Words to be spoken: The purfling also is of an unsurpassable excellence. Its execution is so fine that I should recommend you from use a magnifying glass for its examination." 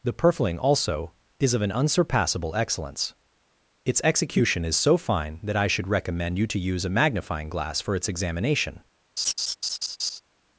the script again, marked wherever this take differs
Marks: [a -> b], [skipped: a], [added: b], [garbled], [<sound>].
The purfling also is of an unsurpassable excellence. Its execution is so fine that I should recommend you [from -> to] use a magnifying glass for its examination." [laugh]